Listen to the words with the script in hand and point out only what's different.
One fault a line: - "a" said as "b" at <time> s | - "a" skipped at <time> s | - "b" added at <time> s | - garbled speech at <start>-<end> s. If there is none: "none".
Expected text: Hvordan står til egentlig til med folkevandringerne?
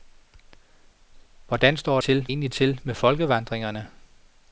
none